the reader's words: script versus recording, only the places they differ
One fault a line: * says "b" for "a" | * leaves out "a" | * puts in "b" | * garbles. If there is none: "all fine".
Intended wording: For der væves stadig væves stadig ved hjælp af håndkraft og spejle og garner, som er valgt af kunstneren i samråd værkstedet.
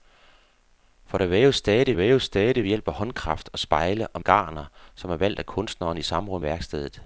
all fine